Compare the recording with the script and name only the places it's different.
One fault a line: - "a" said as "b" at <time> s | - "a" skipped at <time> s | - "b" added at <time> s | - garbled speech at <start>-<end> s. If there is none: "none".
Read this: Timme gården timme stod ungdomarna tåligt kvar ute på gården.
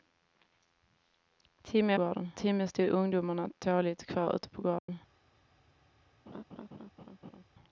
none